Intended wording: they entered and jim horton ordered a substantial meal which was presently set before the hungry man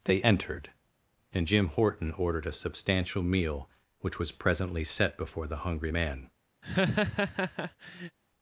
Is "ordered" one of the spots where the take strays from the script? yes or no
no